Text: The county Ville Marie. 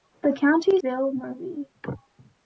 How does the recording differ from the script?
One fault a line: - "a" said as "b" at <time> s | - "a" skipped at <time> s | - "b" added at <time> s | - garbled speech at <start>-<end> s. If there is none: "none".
none